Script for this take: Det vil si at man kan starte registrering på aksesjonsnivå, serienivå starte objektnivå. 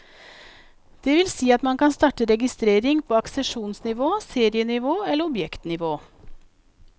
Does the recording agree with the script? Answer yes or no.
no